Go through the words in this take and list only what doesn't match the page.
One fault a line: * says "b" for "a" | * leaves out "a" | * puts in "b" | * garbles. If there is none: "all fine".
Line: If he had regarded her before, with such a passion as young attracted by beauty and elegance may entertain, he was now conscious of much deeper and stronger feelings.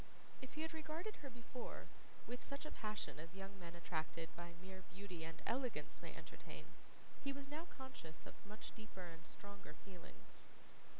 * puts in "men"
* puts in "mere"